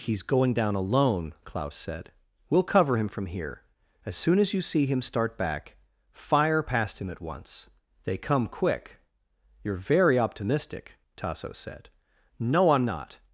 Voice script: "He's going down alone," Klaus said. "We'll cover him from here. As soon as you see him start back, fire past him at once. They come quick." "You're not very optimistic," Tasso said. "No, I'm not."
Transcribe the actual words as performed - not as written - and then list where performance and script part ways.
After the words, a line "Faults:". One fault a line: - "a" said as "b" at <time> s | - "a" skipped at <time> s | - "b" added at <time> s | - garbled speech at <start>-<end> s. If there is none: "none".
"He's going down alone," Klaus said. "We'll cover him from here. As soon as you see him start back, fire past him at once. They come quick." "You're very optimistic," Tasso said. "No, I'm not."
Faults:
- "not" skipped at 9.7 s